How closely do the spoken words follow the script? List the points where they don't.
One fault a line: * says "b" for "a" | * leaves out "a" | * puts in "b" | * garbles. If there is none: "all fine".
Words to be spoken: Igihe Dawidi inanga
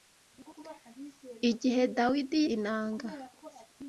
all fine